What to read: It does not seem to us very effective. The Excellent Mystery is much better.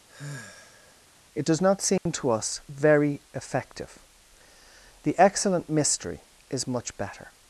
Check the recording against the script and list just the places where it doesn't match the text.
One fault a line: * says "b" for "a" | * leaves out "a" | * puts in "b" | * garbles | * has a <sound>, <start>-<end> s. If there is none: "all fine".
* has a sigh, 0.1-1.0 s
* has a dropout, 2.0-2.1 s